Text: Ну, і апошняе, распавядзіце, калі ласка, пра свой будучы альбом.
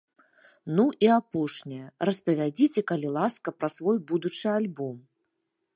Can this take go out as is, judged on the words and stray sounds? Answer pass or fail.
pass